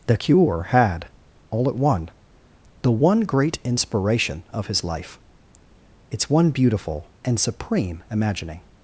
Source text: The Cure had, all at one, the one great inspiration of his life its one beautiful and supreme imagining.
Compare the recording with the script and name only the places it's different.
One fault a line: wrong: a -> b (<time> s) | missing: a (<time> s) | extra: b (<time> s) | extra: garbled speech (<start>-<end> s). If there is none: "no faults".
no faults